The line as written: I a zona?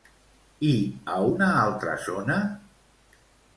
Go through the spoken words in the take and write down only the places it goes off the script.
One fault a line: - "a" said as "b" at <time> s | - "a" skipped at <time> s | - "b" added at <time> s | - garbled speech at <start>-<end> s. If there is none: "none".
- "una altra" added at 1.3 s